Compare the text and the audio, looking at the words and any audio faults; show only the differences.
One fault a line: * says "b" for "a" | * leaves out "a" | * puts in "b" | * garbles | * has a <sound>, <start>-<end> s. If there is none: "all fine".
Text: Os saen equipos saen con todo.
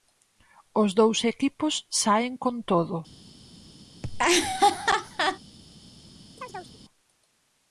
* says "dous" for "saen"
* has a laugh, 4.0-5.4 s
* has a chirp, 6.4-6.8 s